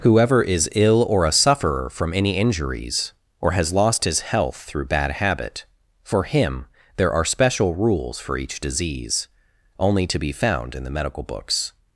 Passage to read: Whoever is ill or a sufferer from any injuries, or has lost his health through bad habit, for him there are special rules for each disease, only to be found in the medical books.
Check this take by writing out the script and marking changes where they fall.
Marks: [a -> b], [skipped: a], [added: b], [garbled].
Whoever is ill or a sufferer from any injuries, or has lost his health through bad habit, for him there are special rules for each disease, only to be found in the medical books.